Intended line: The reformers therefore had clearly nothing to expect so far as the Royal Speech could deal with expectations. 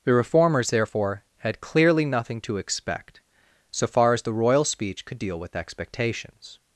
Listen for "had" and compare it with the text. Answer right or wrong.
right